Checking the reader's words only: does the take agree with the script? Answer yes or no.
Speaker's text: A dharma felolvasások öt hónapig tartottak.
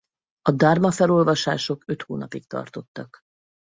yes